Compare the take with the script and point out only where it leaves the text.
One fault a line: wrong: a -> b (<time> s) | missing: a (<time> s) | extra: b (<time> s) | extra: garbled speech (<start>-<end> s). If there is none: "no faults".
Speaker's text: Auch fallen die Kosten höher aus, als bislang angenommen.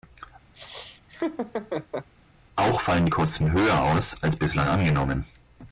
no faults